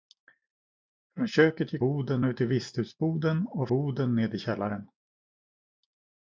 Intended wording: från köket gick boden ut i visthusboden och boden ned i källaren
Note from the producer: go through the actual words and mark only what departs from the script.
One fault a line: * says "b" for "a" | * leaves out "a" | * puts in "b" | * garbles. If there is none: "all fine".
all fine